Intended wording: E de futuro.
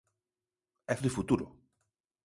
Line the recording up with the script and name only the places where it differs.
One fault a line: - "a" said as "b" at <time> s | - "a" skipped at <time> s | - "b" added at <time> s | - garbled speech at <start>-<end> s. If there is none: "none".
none